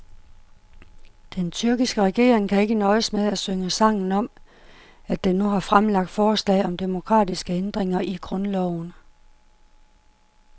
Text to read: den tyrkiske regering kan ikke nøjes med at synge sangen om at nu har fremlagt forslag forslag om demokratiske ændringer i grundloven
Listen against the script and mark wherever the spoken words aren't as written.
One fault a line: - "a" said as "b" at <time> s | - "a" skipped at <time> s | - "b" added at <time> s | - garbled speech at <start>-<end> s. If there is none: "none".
- "den" added at 5.2 s
- "forslag" skipped at 6.7 s